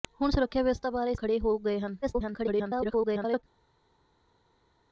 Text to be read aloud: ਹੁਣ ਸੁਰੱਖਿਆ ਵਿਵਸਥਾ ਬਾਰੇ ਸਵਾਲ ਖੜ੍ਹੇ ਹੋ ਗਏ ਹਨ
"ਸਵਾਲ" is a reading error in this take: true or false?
true